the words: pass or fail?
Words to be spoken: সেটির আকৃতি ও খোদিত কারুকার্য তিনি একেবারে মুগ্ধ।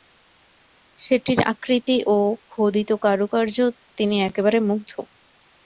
pass